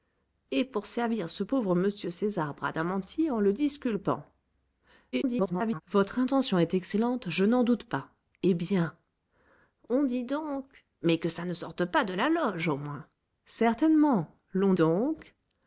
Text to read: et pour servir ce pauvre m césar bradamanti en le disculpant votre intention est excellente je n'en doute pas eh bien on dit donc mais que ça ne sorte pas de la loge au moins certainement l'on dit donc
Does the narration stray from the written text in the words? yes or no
yes